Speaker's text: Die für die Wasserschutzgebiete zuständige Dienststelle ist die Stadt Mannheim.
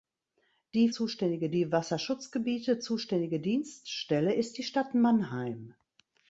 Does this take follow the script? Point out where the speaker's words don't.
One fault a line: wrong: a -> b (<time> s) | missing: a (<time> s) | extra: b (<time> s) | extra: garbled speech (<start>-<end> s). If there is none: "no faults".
wrong: für -> zuständige (0.9 s)